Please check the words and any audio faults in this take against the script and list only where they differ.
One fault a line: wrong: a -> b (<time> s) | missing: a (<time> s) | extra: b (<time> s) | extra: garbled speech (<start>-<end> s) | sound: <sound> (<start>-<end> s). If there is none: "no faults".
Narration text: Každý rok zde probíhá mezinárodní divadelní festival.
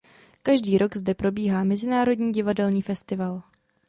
no faults